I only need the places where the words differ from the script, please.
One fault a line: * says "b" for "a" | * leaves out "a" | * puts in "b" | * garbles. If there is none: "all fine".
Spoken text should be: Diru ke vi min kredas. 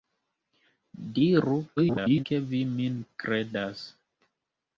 * garbles